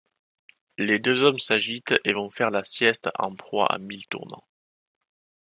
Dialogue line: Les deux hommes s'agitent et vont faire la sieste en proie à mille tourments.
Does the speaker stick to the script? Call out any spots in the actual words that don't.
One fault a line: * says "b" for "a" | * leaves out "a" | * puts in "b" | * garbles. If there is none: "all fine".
all fine